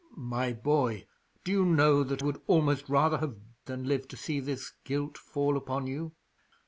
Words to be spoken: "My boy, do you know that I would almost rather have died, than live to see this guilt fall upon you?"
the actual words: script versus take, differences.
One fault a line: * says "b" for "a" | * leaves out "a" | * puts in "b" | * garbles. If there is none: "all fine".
* leaves out "I"
* leaves out "died"